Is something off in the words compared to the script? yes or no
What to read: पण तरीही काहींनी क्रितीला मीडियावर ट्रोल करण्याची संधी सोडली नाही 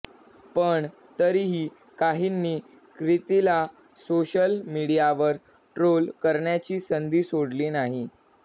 yes